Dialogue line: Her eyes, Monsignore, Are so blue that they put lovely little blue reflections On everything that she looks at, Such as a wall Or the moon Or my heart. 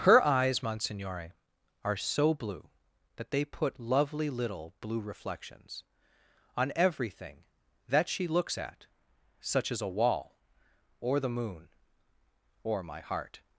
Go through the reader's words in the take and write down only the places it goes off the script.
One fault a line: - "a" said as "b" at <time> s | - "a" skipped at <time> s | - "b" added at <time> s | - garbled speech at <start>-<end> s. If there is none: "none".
none